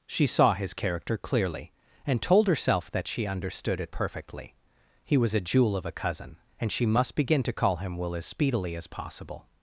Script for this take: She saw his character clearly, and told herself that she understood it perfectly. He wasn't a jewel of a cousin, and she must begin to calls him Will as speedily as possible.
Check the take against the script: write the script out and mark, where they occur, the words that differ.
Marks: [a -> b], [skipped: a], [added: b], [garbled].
She saw his character clearly, and told herself that she understood it perfectly. He [wasn't -> was] a jewel of a cousin, and she must begin to [calls -> call] him Will as speedily as possible.